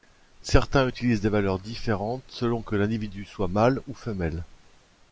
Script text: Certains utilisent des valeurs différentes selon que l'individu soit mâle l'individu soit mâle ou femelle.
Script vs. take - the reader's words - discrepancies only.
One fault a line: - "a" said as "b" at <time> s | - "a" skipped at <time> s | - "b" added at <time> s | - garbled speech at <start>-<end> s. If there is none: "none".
- "l'individu soit mâle" skipped at 3.8 s